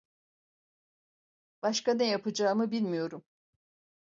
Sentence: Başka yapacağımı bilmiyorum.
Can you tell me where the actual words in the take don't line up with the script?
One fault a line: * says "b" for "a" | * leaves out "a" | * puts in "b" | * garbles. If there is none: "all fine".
* puts in "ne"